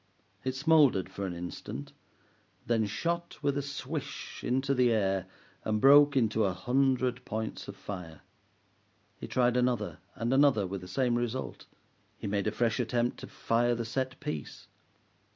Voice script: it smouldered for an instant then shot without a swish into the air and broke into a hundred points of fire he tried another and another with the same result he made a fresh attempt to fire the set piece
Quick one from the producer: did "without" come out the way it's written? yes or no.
no